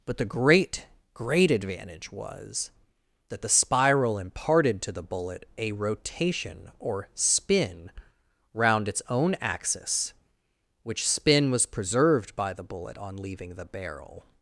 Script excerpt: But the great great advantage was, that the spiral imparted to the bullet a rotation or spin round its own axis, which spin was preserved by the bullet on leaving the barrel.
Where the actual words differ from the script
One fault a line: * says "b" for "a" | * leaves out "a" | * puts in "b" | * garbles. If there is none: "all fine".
all fine